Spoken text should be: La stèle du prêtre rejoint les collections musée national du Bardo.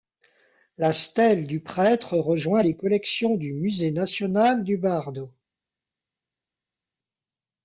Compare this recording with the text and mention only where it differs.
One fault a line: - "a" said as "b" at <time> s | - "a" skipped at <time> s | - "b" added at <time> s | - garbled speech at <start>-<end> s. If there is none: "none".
- "du" added at 3.4 s